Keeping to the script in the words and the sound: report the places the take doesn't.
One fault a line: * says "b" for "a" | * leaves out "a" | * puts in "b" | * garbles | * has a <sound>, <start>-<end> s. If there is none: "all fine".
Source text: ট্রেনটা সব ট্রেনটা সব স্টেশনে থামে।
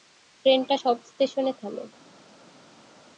* leaves out "ট্রেনটা সব"